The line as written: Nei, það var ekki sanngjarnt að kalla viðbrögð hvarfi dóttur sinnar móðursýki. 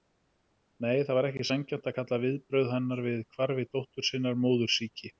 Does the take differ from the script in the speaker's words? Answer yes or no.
yes